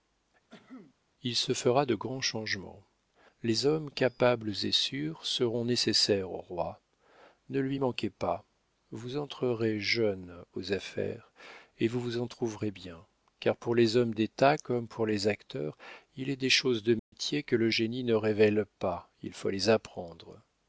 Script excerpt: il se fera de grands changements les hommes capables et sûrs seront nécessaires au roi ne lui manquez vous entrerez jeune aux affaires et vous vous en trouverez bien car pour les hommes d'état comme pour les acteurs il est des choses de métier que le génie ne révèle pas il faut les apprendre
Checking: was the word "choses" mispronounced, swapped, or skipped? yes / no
no